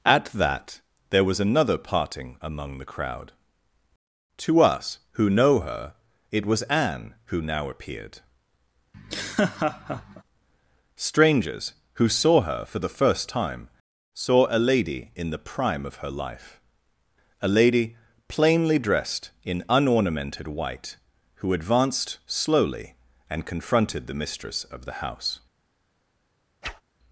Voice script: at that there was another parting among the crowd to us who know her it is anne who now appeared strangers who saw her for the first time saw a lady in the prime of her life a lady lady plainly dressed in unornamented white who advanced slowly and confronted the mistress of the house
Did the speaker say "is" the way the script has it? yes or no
no